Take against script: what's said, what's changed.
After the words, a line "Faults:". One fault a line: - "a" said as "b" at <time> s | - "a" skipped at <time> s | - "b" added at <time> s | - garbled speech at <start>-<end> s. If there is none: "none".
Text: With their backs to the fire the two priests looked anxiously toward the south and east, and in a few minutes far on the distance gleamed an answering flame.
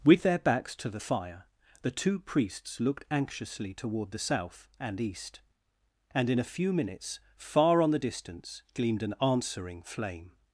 With their backs to the fire the two priests looked anxiously toward the south and east, and in a few minutes far on the distance gleamed an answering flame.
Faults:
none